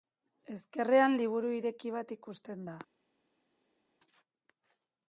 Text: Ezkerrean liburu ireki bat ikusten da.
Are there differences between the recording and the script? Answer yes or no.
no